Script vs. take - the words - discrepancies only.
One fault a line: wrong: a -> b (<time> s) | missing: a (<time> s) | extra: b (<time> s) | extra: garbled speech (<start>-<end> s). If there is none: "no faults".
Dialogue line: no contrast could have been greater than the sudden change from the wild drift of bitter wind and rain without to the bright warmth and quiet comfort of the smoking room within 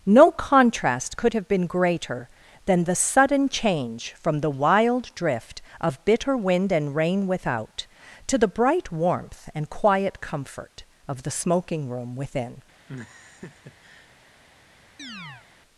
no faults